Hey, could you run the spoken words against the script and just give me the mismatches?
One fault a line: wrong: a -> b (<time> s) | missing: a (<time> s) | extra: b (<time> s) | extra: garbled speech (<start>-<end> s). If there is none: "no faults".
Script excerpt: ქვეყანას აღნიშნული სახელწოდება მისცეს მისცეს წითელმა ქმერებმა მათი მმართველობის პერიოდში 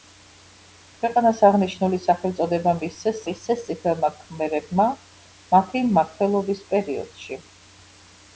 no faults